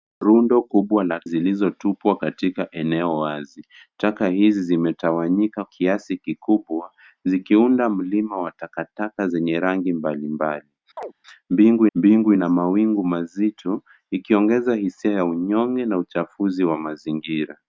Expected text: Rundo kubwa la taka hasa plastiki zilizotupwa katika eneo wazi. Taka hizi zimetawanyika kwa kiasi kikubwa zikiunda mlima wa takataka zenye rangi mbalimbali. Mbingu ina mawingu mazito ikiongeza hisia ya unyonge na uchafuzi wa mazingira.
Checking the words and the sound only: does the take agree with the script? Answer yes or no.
no